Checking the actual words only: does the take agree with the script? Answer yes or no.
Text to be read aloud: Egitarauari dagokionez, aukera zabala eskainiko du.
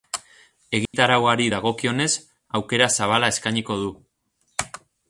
yes